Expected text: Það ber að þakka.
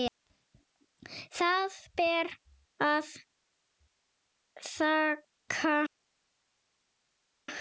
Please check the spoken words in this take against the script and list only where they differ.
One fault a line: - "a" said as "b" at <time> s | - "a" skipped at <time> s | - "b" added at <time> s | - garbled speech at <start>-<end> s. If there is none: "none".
none